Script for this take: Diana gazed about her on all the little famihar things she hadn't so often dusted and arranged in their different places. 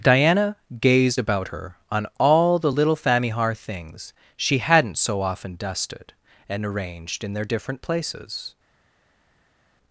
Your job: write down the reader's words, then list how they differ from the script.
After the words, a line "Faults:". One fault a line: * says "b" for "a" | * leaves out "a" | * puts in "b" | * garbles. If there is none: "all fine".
Diana gazed about her on all the little famihar things she hadn't so often dusted and arranged in their different places.
Faults:
all fine